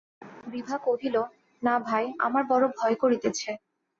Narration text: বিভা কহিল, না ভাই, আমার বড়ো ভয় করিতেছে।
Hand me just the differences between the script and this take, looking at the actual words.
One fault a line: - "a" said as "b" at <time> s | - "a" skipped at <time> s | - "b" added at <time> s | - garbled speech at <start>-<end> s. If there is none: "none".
none